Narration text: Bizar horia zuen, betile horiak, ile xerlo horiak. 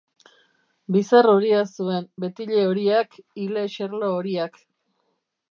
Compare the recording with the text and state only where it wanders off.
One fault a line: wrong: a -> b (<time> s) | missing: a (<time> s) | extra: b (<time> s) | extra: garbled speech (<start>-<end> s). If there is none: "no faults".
no faults